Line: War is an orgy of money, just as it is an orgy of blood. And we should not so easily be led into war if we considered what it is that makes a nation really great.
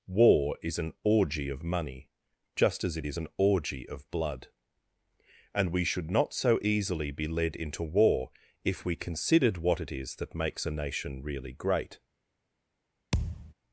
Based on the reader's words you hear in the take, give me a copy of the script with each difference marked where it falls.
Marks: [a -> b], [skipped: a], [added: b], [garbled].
War is an orgy of money, just as it is an orgy of blood. And we should not so easily be led into war if we considered what it is that makes a nation really great.